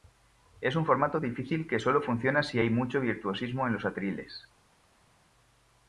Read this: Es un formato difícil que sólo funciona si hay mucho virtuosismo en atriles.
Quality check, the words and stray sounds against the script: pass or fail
fail